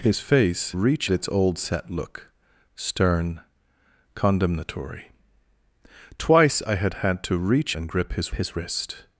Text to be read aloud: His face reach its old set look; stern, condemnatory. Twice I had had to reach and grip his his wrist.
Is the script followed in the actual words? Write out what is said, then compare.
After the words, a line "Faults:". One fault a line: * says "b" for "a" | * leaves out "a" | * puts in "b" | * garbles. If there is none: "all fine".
His face reach its old set look; stern, condemnatory. Twice I had had to reach and grip his his wrist.
Faults:
all fine